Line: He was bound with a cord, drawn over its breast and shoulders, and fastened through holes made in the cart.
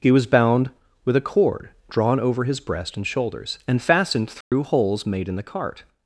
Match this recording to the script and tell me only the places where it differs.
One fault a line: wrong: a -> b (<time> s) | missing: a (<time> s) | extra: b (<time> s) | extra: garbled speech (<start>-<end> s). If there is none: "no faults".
wrong: its -> his (2.4 s)